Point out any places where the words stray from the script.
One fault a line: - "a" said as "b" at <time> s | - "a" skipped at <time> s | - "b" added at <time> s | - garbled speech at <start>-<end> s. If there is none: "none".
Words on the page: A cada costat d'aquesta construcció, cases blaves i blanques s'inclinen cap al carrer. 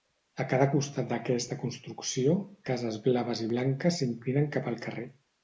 none